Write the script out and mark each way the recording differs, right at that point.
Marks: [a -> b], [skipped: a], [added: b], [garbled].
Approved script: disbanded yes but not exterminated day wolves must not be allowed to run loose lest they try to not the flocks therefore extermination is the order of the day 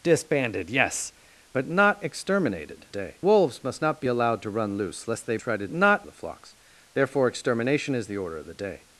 disbanded yes but not exterminated day wolves must not be allowed to run loose lest they try to not the flocks therefore extermination is the order of the day